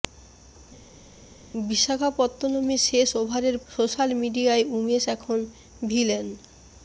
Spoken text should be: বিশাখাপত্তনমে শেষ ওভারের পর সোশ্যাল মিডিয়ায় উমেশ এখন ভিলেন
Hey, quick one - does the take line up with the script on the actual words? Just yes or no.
no